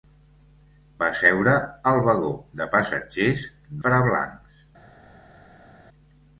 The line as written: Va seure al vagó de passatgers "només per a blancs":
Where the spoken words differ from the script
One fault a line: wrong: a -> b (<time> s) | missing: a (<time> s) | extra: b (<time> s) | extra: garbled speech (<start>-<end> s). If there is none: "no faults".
missing: només (3.5 s)